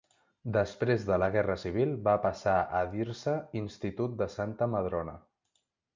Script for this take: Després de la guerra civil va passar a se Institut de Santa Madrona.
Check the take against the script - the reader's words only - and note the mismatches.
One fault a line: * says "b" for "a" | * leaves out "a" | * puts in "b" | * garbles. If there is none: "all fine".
* puts in "dir"